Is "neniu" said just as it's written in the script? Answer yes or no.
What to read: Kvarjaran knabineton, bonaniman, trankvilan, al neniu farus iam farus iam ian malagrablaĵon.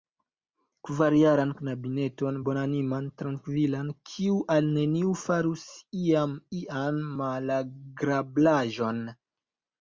yes